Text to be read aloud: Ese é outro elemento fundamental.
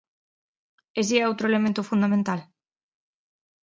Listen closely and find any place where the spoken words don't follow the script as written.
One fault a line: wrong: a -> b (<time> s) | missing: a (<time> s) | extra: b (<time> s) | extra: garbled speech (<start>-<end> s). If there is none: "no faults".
no faults